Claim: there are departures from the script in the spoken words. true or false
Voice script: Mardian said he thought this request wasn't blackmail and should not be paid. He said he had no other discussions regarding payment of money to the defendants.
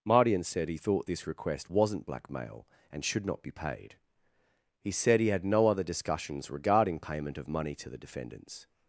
false